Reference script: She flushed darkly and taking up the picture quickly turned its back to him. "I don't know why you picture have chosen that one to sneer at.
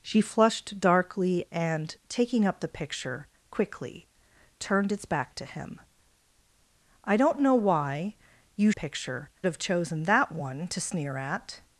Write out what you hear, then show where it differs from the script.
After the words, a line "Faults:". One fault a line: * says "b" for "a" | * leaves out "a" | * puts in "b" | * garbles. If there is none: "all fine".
She flushed darkly and taking up the picture quickly turned its back to him. "I don't know why you picture have chosen that one to sneer at.
Faults:
all fine